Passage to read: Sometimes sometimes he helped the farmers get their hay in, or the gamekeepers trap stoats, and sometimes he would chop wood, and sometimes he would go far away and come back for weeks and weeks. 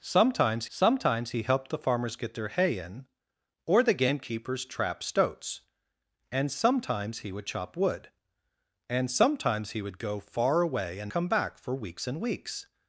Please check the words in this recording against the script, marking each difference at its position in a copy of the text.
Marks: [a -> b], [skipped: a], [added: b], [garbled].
Sometimes sometimes he helped the farmers get their hay in, or the gamekeepers trap stoats, and sometimes he would chop wood, and sometimes he would go far away and come back for weeks and weeks.